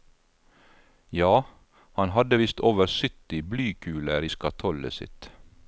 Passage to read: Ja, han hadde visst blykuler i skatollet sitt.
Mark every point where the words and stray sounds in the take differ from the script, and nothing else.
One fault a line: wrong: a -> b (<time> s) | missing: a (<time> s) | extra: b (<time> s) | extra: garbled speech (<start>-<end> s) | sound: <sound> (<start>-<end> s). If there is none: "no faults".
extra: over sytti (2.6 s)